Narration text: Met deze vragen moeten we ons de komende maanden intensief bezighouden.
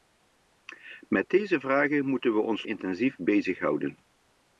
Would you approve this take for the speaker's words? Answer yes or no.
no